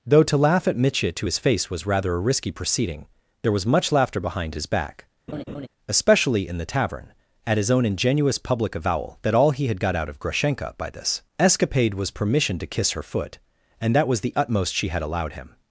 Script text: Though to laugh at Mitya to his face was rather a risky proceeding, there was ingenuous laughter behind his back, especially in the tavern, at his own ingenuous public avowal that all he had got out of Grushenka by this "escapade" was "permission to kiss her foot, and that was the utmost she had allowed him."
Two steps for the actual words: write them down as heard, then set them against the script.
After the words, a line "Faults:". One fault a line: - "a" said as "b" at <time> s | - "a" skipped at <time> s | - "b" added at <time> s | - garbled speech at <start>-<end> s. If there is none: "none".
Though to laugh at Mitya to his face was rather a risky proceeding, there was much laughter behind his back, especially in the tavern, at his own ingenuous public avowal that all he had got out of Grushenka by this "escapade" was "permission to kiss her foot, and that was the utmost she had allowed him."
Faults:
- "ingenuous" said as "much" at 3.7 s